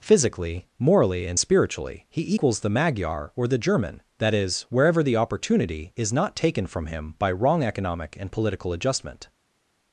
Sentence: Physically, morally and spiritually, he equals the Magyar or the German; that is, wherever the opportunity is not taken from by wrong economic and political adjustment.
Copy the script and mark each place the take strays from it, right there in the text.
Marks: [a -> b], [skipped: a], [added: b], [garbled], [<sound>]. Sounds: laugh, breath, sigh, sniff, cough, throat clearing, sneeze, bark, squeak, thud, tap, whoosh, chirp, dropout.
Physically, morally and spiritually, he equals the Magyar or the German; that is, wherever the opportunity is not taken from [added: him] by wrong economic and political adjustment.